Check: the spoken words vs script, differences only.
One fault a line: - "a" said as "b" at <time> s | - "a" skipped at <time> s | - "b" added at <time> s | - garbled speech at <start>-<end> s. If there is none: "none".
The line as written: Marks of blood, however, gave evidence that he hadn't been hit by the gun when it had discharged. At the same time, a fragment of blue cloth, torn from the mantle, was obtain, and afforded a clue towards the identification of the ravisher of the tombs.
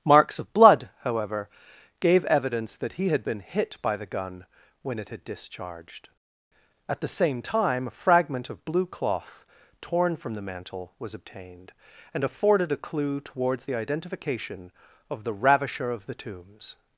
- "hadn't" said as "had" at 3.1 s
- "obtain" said as "obtained" at 11.1 s